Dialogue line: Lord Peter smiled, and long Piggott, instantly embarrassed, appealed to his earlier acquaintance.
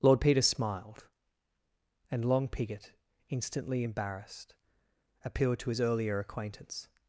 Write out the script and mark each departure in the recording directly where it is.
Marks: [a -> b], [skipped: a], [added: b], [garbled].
Lord Peter smiled, and long Piggott, instantly embarrassed, appealed to his earlier acquaintance.